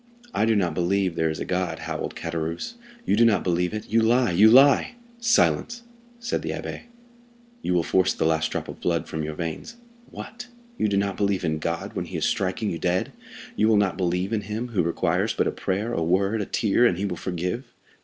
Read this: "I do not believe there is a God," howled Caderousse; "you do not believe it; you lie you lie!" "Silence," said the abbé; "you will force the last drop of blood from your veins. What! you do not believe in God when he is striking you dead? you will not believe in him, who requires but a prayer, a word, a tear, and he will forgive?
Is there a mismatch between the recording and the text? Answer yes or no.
no